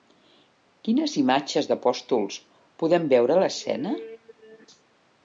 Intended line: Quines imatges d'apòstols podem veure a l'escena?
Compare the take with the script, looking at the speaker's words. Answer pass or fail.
pass